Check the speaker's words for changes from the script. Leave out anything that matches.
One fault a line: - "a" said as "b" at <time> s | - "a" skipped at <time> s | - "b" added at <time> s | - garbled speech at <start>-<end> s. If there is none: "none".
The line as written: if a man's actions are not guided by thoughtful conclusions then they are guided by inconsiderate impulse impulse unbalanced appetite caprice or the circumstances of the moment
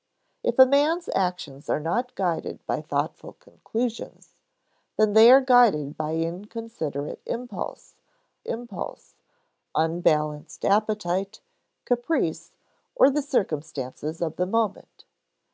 none